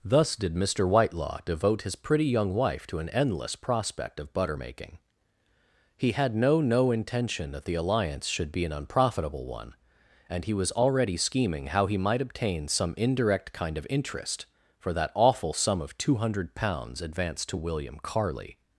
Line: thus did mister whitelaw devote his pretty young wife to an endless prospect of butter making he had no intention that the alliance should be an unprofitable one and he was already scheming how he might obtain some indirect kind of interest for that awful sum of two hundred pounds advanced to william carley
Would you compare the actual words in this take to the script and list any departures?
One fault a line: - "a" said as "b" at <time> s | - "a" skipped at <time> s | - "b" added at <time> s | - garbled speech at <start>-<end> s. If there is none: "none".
- "no" added at 6.6 s